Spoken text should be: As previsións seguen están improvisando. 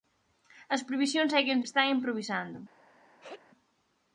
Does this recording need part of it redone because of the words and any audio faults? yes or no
yes